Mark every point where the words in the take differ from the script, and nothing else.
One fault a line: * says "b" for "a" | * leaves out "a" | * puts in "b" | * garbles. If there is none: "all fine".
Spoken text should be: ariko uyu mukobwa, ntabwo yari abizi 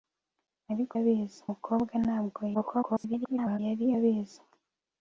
* says "abizi" for "uyu"
* garbles